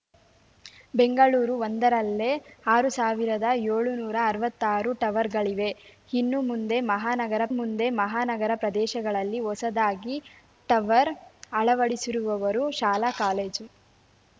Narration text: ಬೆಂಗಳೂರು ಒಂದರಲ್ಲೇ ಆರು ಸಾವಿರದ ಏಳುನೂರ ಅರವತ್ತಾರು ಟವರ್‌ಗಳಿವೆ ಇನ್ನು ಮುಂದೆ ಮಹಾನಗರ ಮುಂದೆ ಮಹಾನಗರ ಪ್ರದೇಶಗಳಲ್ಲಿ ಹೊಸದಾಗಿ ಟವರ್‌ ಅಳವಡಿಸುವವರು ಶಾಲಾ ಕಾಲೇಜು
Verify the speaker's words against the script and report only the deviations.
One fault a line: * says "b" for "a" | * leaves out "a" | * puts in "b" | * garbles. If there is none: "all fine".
all fine